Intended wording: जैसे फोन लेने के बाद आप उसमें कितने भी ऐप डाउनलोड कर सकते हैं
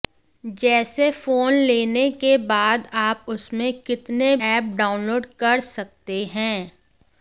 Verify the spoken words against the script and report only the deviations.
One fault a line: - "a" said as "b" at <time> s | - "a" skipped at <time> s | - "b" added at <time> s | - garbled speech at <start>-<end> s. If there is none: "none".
- "भी" skipped at 4.3 s